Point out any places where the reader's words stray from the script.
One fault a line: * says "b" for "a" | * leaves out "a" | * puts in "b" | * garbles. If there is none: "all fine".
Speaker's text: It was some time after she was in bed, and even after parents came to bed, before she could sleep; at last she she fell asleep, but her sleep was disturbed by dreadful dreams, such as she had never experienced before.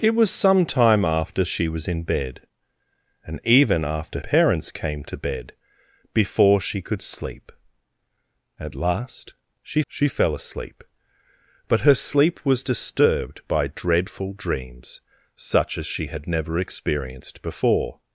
all fine